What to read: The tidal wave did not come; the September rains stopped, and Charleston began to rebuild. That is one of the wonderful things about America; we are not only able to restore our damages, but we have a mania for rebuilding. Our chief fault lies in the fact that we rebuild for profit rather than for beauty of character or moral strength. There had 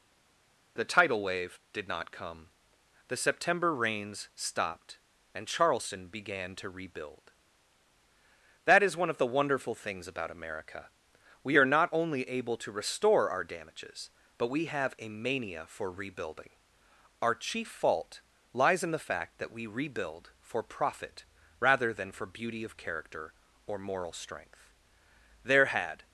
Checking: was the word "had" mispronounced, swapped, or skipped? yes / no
no